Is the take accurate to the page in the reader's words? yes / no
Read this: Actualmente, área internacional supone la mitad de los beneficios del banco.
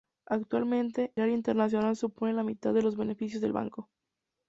yes